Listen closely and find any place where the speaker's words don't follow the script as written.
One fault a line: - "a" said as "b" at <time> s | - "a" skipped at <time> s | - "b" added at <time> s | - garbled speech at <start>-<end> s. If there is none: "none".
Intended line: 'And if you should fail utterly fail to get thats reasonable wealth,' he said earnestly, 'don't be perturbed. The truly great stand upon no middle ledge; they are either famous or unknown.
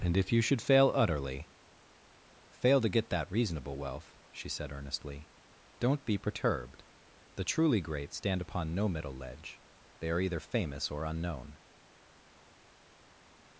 - "thats" said as "that" at 3.1 s
- "he" said as "she" at 4.3 s